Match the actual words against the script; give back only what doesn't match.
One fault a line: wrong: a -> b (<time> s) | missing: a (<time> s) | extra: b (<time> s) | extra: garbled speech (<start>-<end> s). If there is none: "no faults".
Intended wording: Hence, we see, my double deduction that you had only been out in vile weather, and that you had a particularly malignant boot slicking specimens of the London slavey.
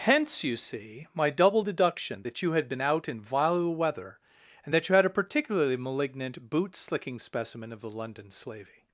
wrong: we -> you (0.4 s)
missing: only (2.7 s)
wrong: specimens -> specimen (7.2 s)